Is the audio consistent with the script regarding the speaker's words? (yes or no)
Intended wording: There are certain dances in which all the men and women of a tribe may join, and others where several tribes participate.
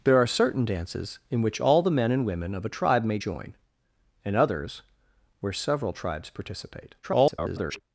no